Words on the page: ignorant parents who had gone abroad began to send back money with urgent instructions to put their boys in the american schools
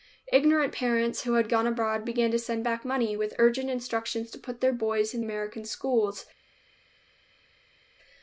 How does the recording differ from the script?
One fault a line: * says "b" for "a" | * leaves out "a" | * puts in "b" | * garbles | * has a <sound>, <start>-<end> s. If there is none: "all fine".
* leaves out "the"